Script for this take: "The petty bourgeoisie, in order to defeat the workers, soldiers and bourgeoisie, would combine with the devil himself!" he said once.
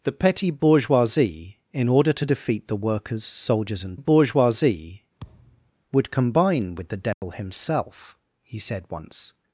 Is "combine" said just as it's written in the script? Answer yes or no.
yes